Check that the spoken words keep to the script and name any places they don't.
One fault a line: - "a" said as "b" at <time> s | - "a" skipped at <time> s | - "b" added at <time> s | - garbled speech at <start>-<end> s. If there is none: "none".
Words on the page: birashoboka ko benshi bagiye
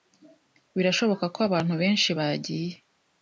- "abantu" added at 1.5 s